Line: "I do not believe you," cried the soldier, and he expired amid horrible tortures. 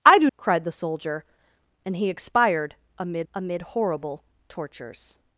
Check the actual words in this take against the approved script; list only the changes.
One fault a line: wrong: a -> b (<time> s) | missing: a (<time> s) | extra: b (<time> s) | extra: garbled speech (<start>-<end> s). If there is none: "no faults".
missing: not believe you (0.3 s)
extra: amid (3.3 s)